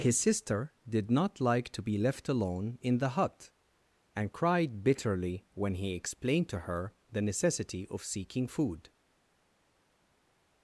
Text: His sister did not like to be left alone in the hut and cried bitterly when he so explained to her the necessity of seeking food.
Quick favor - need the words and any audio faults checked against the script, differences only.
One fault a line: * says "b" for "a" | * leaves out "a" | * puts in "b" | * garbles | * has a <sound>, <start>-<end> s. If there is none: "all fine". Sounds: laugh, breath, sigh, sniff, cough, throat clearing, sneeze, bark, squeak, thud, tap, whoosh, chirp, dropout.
* leaves out "so"